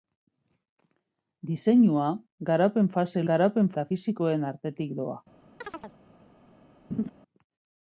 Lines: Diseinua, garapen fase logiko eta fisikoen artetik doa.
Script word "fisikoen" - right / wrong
right